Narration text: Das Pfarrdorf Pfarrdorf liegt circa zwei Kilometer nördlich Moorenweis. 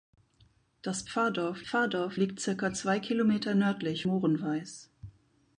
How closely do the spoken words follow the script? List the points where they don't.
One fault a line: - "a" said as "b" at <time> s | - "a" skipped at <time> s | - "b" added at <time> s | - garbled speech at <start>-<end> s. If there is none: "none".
none